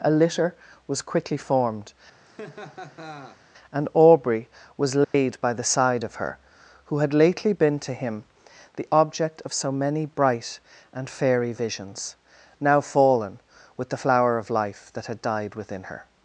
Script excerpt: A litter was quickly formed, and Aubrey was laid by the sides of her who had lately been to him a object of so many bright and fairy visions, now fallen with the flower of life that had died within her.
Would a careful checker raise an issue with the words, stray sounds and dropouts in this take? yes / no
yes